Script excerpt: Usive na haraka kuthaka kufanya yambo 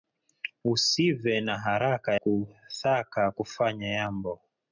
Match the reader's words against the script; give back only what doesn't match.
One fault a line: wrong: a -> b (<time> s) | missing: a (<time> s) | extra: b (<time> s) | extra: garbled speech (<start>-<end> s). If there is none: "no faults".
no faults